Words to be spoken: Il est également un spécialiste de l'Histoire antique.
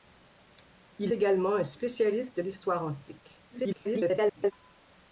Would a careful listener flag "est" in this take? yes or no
yes